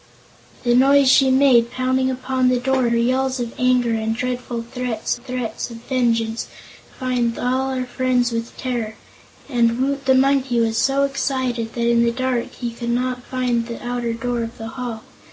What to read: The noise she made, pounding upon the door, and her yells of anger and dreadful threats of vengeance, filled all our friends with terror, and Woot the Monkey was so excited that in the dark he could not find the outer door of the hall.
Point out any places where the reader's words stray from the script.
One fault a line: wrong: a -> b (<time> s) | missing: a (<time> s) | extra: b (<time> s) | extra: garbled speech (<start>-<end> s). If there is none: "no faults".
missing: and (2.9 s)
extra: threats (5.1 s)
wrong: filled -> find (6.9 s)